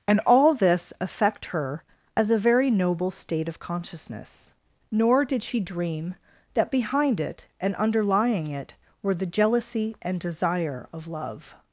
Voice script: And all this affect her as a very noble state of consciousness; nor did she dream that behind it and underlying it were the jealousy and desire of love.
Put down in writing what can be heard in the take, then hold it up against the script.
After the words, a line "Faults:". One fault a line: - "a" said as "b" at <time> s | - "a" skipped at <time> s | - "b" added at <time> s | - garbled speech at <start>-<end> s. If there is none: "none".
And all this affect her as a very noble state of consciousness; nor did she dream that behind it and underlying it were the jealousy and desire of love.
Faults:
none